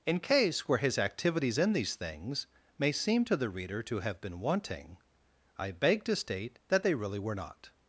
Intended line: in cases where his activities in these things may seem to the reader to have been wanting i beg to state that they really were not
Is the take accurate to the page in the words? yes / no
no